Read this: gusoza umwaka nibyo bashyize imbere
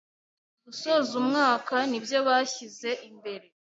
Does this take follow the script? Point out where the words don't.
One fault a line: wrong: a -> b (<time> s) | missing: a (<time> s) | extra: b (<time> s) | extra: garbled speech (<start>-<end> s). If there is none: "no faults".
no faults